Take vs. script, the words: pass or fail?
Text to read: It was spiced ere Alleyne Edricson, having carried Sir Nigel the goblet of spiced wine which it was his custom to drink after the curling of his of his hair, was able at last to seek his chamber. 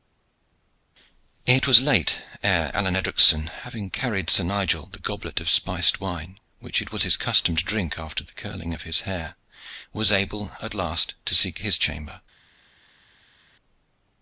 fail